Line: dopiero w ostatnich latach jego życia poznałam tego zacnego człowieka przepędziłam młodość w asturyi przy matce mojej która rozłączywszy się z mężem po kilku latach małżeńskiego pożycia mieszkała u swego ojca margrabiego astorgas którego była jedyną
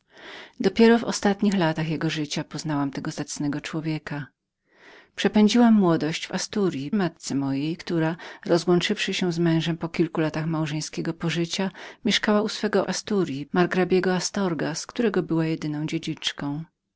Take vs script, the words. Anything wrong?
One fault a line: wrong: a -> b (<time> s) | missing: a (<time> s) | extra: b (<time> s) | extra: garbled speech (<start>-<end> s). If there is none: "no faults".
missing: przy (6.9 s)
wrong: ojca -> asturyi (12.9 s)